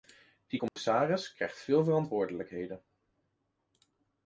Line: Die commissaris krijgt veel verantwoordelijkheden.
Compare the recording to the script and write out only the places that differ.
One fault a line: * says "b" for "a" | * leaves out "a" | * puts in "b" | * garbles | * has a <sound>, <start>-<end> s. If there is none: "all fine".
* has a dropout, 0.7-0.8 s